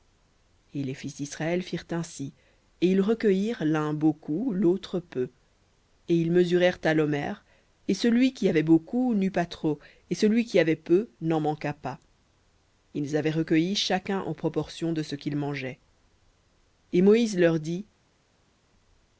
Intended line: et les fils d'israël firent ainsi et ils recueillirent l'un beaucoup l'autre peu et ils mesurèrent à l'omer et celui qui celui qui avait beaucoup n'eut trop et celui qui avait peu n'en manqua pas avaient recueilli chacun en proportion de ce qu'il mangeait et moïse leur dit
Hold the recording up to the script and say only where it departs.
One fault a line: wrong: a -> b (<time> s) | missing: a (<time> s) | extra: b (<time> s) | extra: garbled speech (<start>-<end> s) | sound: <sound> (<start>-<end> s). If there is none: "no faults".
missing: celui qui (8.5 s)
extra: pas (9.3 s)
extra: ils (12.9 s)